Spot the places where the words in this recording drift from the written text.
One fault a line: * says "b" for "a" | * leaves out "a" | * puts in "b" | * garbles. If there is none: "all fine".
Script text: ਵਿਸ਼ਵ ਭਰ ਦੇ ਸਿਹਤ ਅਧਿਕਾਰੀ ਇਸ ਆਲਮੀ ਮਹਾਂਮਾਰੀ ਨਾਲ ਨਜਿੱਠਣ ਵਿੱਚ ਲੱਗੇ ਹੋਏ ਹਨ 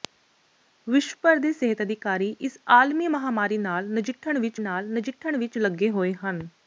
* puts in "ਨਾਲ ਨਜਿੱਠਣ ਵਿੱਚ"